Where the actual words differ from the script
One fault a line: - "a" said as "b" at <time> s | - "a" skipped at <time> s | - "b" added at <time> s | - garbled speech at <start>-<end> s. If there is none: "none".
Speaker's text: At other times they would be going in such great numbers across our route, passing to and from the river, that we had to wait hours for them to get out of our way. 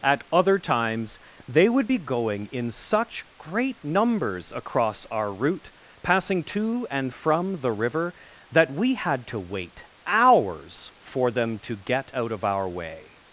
none